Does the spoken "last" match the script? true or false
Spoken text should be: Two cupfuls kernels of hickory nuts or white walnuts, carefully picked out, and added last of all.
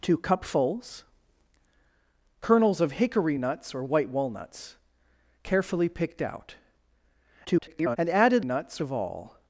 false